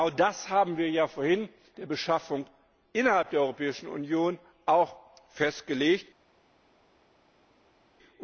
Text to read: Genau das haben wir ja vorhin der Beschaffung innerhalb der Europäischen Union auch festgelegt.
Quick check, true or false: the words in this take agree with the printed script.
true